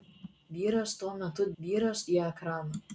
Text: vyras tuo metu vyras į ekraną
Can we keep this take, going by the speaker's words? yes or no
yes